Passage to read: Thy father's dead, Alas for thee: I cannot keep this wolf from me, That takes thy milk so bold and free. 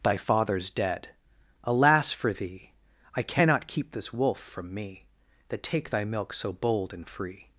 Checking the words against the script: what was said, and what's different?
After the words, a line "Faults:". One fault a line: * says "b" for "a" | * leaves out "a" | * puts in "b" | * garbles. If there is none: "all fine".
Thy father's dead, Alas for thee: I cannot keep this wolf from me, That take thy milk so bold and free.
Faults:
* says "take" for "takes"